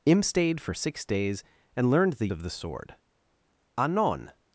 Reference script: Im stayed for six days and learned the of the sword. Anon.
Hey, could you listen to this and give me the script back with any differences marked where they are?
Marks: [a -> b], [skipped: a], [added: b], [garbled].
Im stayed for six days and learned the of the sword. Anon.